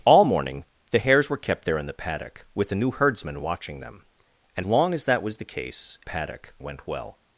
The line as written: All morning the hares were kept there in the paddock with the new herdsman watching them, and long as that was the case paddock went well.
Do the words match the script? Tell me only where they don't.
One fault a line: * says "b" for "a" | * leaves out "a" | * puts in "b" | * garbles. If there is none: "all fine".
all fine